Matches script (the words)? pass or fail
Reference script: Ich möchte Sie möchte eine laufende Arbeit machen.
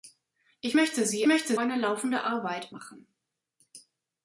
pass